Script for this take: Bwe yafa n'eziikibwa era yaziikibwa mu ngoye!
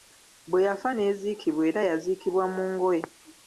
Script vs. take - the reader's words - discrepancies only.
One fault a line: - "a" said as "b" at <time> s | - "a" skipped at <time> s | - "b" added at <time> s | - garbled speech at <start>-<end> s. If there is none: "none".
none